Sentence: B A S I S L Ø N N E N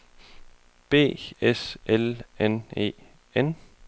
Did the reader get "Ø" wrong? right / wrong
wrong